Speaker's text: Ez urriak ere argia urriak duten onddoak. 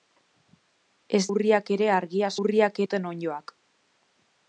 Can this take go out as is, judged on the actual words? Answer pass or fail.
pass